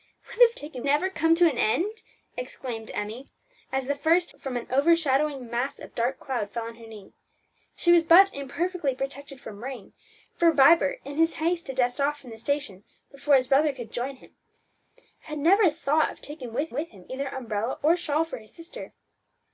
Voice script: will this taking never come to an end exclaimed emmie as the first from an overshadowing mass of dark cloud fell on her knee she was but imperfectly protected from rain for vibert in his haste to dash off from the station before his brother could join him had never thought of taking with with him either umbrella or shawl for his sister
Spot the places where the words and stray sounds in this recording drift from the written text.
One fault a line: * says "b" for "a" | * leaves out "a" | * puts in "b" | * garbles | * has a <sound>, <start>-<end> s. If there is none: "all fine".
all fine